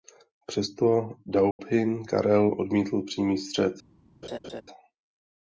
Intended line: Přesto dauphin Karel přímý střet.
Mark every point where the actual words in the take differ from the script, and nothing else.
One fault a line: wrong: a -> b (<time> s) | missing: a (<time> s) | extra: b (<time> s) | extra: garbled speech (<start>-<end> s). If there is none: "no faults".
extra: odmítl (2.6 s)